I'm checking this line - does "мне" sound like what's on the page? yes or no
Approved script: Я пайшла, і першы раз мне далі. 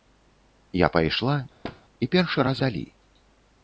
no